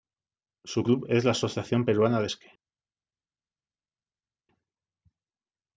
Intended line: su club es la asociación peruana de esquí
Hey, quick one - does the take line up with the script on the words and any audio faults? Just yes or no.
yes